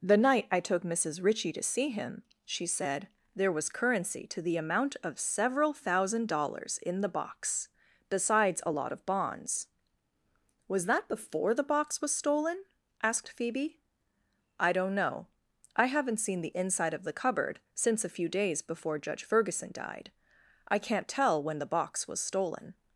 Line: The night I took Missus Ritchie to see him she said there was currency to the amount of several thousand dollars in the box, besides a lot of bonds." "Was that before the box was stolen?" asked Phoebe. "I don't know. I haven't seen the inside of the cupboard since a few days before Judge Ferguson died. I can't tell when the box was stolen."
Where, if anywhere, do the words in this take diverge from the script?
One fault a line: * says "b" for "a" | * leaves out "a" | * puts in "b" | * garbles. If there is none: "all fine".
all fine